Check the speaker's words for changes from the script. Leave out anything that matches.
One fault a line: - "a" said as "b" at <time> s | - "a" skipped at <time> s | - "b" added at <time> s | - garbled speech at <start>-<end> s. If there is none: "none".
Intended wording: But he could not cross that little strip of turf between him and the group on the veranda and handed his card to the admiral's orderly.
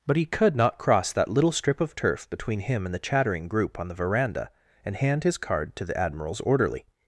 - "chattering" added at 3.0 s
- "handed" said as "hand" at 4.9 s